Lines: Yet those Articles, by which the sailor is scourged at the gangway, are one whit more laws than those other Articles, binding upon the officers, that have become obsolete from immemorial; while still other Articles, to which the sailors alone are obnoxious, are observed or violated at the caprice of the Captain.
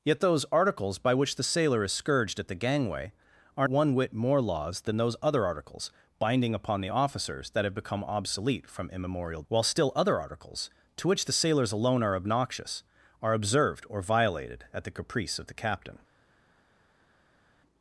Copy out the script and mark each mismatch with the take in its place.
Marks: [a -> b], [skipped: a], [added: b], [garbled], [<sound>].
Yet those Articles, by which the sailor is scourged at the gangway, are one whit more laws than those other Articles, binding upon the officers, that have become obsolete from immemorial; while still other Articles, to which the sailors alone are obnoxious, are observed or violated at the caprice of the Captain.